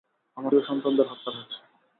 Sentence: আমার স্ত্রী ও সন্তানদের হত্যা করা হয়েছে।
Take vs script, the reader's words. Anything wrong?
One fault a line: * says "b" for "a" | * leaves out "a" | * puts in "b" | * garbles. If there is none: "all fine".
* leaves out "স্ত্রী"
* leaves out "করা"